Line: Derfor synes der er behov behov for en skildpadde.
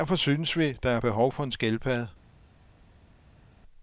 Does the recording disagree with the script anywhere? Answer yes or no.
yes